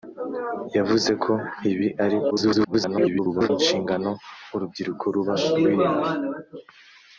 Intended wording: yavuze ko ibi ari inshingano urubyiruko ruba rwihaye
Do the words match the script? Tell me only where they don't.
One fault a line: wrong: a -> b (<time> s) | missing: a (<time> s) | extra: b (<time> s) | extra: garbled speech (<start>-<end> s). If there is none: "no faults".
extra: garbled speech (2.3-3.5 s)